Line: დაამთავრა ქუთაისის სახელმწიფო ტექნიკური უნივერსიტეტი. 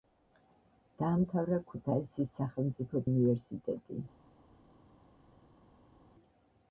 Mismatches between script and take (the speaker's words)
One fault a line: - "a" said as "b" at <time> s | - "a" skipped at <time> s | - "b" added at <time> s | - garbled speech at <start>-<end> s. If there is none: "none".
- "ტექნიკური" skipped at 3.0 s